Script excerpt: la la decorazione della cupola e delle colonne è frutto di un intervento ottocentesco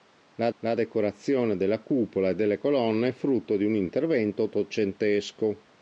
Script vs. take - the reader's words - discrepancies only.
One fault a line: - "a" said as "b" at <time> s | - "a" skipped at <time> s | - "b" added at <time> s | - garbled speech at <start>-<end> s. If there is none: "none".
none